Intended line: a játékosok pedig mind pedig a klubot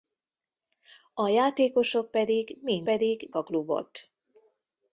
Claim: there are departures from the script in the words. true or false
false